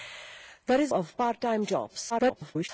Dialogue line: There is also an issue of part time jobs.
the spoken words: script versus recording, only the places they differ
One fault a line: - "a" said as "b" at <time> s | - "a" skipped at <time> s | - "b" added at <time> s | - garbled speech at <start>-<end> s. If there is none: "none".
- "also an issue" skipped at 0.9 s
- garbled speech at 2.1-2.7 s